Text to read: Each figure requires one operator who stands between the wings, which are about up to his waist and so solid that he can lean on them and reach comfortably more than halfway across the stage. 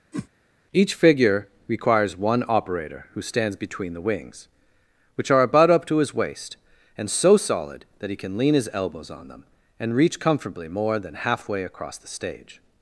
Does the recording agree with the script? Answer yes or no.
no